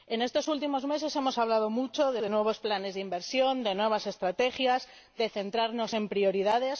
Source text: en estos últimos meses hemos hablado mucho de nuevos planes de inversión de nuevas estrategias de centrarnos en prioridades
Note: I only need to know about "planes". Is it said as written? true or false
true